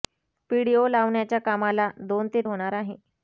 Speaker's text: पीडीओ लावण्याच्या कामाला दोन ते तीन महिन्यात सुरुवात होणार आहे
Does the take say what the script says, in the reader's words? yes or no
no